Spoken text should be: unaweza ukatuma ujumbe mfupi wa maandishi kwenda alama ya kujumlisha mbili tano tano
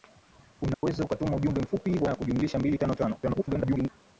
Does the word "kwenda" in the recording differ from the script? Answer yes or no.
yes